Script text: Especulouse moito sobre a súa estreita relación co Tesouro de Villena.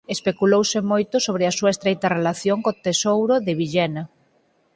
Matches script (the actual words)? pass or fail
pass